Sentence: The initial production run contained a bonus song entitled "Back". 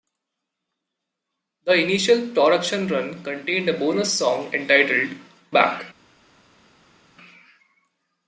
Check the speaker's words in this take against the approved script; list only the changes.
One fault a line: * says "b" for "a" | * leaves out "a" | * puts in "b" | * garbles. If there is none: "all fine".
all fine